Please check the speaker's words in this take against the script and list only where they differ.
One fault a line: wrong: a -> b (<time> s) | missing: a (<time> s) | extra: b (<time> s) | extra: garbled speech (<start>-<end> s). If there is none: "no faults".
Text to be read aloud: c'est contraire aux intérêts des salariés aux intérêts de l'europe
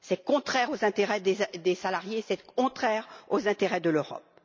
extra: c'est contraire (2.3 s)